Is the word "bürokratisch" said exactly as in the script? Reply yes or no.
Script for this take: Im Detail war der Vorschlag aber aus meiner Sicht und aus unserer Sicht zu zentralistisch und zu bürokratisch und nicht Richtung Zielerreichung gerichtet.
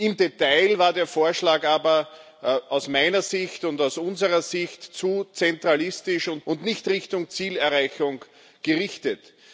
no